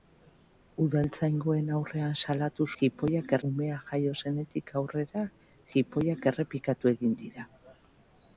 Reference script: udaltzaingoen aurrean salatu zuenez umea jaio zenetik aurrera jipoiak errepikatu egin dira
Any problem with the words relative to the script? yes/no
yes